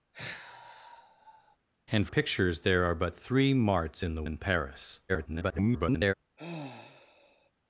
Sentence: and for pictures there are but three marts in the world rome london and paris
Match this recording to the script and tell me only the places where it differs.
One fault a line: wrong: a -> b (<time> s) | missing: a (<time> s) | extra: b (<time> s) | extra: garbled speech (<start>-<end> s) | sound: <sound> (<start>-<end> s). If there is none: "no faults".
sound: sigh (0.1-1.6 s)
missing: for (2.1 s)
missing: world rome london (4.2 s)
extra: garbled speech (5.1-6.1 s)
sound: sigh (6.4-7.5 s)